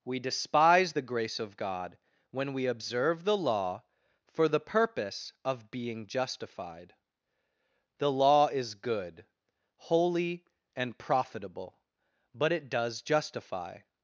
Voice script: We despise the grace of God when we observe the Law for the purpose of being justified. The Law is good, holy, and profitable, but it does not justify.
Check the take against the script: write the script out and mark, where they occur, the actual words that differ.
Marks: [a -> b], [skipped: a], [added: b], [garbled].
We despise the grace of God when we observe the Law for the purpose of being justified. The Law is good, holy, and profitable, but it does [skipped: not] justify.